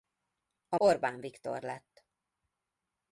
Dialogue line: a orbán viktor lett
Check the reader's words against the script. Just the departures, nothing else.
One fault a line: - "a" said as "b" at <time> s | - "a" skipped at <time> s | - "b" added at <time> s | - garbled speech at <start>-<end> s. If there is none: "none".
none